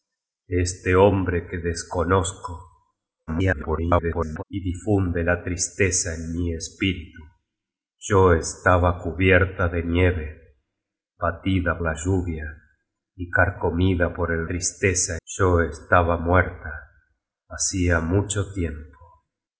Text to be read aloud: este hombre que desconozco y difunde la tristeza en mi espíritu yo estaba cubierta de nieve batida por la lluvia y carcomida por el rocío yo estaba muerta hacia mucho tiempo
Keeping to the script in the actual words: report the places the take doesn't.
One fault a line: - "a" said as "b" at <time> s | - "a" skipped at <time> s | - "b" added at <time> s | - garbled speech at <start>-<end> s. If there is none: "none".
- garbled speech at 3.3-4.4 s
- "por" skipped at 11.8 s
- "rocío" said as "tristeza" at 14.5 s